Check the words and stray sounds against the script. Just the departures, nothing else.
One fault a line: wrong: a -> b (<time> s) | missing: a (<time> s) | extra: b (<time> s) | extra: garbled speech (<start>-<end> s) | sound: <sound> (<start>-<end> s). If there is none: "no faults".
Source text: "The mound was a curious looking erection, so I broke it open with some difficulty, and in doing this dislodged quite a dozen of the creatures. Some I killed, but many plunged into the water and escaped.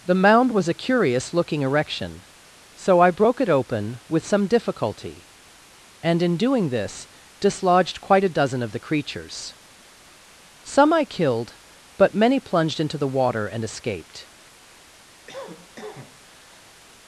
sound: cough (15.3-16.8 s)